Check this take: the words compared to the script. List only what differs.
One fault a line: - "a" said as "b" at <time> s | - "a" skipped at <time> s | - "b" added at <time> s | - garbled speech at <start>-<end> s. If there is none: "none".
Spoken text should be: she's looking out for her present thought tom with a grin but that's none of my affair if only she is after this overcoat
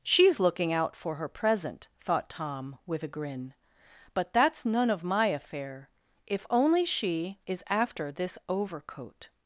none